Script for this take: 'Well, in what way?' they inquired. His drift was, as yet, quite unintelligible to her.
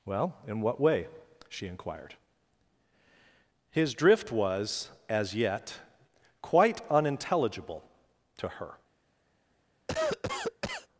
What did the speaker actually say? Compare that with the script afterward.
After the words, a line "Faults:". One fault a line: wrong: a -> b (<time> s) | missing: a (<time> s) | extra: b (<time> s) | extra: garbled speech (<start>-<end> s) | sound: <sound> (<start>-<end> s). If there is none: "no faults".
'Well, in what way?' she inquired. His drift was, as yet, quite unintelligible to her.
Faults:
wrong: they -> she (1.5 s)
sound: cough (9.9-10.9 s)